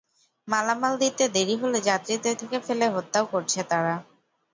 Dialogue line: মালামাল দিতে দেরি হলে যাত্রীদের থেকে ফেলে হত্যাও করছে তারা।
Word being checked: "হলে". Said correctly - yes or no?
yes